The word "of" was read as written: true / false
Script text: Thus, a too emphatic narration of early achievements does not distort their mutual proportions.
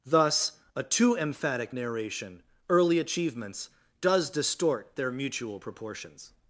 false